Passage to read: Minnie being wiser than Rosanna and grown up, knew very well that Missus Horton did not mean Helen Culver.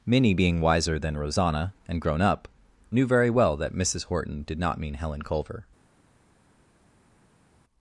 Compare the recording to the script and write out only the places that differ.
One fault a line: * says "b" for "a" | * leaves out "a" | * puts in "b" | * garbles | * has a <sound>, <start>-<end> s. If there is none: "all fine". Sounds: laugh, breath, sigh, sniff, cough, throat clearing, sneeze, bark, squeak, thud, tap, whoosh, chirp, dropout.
all fine